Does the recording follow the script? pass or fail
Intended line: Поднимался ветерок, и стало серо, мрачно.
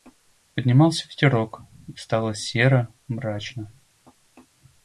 pass